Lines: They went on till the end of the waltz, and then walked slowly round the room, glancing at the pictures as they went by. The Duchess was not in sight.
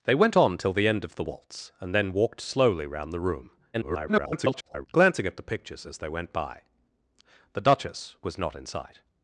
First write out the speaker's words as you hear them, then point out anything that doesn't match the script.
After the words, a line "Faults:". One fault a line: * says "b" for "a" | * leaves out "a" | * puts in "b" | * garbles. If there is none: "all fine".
They went on till the end of the waltz, and then walked slowly round the room, [garbled] glancing at the pictures as they went by. The Duchess was not in sight.
Faults:
* garbles